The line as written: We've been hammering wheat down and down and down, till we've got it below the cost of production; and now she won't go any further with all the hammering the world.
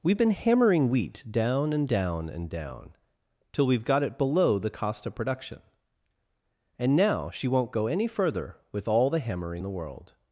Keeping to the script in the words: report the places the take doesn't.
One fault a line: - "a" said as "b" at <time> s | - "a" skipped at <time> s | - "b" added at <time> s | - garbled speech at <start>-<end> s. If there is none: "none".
none